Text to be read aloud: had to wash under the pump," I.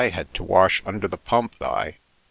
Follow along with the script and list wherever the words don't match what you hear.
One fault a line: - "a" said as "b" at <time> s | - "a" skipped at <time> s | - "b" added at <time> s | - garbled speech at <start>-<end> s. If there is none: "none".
none